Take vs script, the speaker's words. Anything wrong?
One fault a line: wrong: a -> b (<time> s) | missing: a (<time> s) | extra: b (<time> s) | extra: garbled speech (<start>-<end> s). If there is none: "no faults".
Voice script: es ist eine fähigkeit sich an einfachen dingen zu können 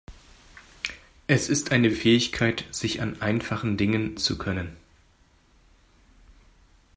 no faults